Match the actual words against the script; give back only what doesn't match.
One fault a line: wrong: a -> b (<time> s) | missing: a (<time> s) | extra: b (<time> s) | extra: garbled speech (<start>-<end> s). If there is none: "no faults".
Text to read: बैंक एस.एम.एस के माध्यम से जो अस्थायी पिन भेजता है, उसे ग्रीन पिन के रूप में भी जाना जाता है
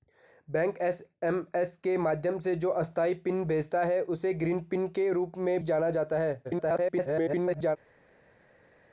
missing: भी (5.6 s)
extra: garbled speech (6.4-7.8 s)